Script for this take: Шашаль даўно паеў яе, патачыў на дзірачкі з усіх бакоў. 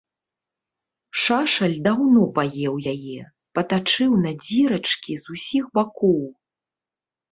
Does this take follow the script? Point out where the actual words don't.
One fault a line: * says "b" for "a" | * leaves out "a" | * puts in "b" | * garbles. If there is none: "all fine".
all fine